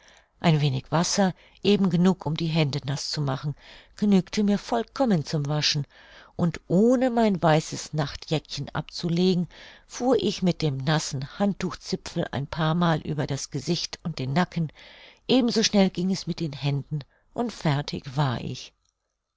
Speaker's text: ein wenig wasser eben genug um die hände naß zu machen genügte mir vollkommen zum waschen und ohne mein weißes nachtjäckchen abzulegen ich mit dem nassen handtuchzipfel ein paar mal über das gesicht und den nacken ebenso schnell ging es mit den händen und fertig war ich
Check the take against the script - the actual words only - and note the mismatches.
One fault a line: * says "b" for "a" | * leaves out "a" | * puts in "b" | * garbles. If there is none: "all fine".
* puts in "fuhr"